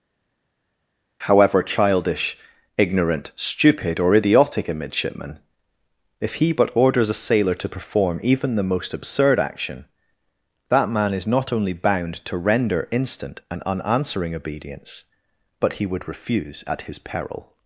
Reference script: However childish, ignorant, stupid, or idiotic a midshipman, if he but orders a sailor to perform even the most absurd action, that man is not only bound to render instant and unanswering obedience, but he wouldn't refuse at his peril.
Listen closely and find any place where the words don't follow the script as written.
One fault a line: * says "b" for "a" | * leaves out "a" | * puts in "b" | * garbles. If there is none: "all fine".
* says "would" for "wouldn't"